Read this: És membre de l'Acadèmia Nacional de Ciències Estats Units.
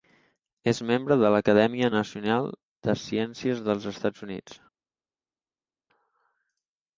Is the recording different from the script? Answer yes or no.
yes